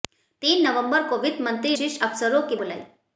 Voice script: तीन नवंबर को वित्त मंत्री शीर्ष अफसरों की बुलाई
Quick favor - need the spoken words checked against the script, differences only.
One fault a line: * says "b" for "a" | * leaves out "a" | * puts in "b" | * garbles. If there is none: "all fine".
all fine